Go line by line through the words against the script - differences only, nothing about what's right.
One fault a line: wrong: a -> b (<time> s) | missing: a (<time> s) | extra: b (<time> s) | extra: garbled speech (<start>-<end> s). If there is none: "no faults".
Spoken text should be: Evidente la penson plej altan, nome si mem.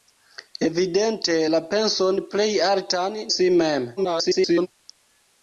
missing: nome (3.2 s)
extra: garbled speech (4.0-4.7 s)